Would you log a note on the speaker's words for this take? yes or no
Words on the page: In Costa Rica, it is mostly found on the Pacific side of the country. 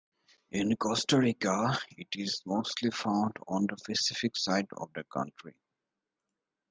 no